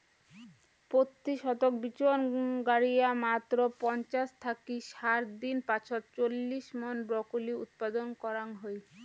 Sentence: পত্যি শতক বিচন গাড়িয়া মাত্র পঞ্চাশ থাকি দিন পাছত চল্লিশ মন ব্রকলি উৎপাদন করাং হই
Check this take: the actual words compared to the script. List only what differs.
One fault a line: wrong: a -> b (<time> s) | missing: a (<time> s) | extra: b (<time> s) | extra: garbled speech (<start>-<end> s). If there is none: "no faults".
extra: ষাট (4.9 s)